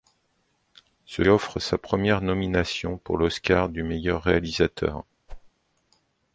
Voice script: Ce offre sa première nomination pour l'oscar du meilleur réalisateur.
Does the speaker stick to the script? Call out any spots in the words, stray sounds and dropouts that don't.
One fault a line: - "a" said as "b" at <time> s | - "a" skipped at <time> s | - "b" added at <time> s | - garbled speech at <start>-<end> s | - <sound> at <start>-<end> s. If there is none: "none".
- whoosh at 5.3-5.5 s